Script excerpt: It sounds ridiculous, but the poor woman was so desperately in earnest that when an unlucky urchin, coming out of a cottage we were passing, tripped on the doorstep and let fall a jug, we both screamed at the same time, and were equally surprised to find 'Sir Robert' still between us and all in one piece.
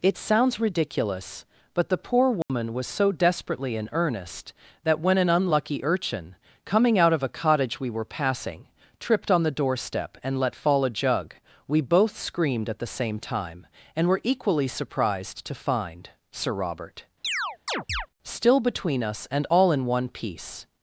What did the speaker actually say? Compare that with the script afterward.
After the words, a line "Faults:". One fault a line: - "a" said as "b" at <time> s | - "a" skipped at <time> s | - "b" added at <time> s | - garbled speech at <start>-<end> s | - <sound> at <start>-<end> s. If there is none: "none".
It sounds ridiculous, but the poor woman was so desperately in earnest that when an unlucky urchin, coming out of a cottage we were passing, tripped on the doorstep and let fall a jug, we both screamed at the same time, and were equally surprised to find 'Sir Robert' still between us and all in one piece.
Faults:
- dropout at 2.4-2.5 s
- chirp at 17.2-18.1 s